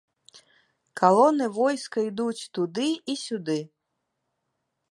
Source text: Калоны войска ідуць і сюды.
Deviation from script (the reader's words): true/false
true